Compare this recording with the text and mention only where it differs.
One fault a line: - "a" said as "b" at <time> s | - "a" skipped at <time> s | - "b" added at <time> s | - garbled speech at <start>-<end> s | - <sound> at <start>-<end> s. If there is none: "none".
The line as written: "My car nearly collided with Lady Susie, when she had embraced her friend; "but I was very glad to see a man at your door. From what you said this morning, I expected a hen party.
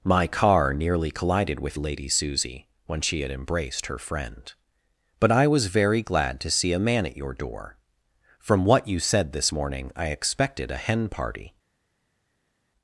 none